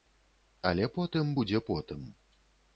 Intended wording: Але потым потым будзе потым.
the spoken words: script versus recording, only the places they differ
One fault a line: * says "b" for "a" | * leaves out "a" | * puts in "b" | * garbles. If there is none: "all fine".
* leaves out "потым"